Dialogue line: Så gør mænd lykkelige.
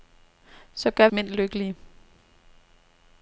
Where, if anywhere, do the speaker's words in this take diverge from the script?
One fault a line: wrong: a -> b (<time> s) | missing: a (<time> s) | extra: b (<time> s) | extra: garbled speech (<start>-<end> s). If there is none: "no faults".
no faults